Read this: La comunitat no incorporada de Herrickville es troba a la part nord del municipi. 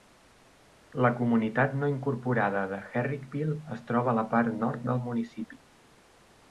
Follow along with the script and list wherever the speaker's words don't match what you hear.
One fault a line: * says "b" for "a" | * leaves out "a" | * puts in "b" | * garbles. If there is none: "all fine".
all fine